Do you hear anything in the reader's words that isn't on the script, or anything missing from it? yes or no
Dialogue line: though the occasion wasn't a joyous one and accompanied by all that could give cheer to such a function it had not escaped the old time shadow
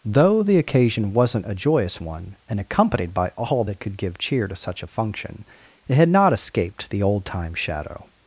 no